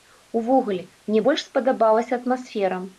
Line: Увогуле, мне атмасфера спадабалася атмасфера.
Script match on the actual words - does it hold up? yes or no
no